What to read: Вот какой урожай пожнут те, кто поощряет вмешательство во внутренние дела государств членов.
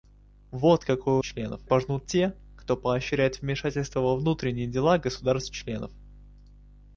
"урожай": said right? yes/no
no